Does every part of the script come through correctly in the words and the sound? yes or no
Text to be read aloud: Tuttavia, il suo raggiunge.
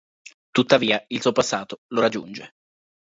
no